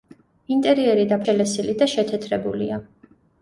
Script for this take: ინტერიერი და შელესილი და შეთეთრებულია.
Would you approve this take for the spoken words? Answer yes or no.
yes